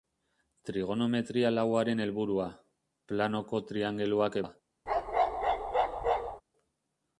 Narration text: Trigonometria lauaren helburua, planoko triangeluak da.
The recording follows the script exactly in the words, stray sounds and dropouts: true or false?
false